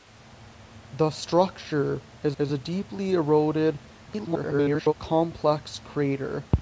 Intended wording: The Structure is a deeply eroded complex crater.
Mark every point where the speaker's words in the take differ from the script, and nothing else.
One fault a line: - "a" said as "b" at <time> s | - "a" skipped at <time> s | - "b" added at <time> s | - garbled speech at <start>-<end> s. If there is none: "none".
- "is" added at 2.4 s
- garbled speech at 4.1-4.9 s